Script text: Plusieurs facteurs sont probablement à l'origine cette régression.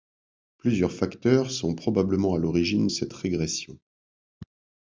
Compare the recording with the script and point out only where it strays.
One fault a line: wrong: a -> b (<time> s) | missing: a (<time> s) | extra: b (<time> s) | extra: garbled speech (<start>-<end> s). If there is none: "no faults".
no faults